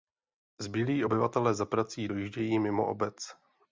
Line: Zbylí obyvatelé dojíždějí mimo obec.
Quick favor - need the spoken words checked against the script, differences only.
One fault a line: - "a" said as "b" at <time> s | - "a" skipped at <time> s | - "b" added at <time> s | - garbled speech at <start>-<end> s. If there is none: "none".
- "za prací" added at 1.5 s